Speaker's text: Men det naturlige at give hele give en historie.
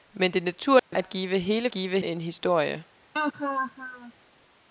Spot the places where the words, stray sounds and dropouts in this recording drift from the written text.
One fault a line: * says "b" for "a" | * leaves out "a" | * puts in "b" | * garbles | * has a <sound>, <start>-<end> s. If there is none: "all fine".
* has a dropout, 0.8-0.9 s
* has a laugh, 3.1-4.1 s